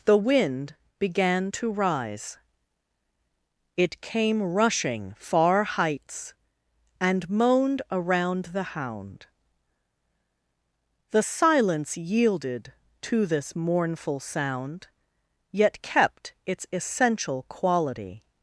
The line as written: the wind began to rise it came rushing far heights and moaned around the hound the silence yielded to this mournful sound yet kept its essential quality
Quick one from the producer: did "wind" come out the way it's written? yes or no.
yes